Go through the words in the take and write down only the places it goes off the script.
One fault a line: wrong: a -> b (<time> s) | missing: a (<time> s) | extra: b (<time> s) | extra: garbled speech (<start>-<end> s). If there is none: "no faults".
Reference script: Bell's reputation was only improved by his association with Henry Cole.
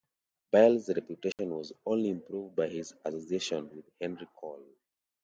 no faults